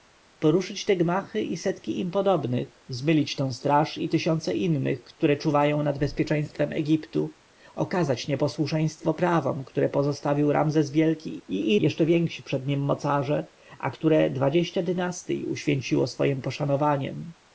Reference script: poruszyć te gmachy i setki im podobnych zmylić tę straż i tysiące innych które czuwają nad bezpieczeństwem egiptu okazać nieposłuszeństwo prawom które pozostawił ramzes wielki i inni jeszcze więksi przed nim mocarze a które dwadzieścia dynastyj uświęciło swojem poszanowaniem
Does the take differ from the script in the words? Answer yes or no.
yes